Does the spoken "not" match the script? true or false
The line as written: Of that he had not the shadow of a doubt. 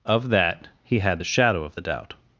false